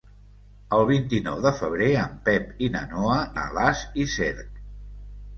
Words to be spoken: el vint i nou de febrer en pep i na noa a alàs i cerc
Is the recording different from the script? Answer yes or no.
no